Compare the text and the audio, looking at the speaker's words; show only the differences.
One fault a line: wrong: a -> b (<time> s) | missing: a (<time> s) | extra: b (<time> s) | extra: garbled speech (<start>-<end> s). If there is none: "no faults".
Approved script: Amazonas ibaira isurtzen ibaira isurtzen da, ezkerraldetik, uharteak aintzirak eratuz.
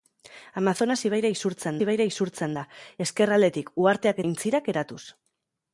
no faults